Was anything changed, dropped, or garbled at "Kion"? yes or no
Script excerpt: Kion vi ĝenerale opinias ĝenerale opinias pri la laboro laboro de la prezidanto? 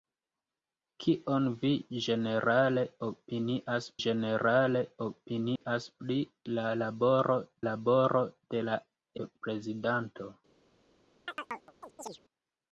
no